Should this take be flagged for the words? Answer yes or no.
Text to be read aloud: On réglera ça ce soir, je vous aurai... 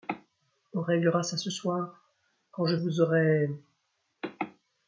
yes